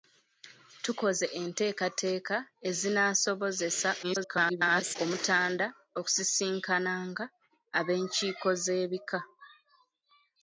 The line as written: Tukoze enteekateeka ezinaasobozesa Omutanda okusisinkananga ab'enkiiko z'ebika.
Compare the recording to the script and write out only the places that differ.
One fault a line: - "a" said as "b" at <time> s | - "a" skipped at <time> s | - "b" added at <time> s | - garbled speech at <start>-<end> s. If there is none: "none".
- garbled speech at 4.0-5.0 s